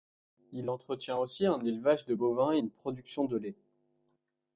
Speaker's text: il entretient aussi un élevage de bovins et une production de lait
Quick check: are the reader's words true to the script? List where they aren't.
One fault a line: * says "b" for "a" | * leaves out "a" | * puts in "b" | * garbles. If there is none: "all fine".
all fine